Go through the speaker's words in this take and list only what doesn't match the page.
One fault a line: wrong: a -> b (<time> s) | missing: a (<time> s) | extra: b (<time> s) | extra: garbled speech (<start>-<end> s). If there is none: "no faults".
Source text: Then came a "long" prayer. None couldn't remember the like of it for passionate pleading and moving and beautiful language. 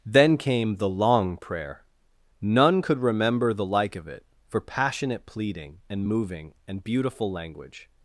wrong: a -> the (0.8 s)
wrong: couldn't -> could (2.8 s)